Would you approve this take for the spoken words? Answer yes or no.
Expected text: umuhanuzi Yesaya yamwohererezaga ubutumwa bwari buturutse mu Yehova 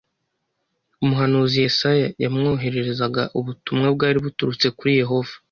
no